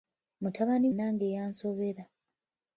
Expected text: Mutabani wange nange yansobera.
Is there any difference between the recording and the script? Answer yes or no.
yes